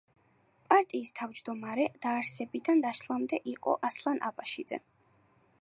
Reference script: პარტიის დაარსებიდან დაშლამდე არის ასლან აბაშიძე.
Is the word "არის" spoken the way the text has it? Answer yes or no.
no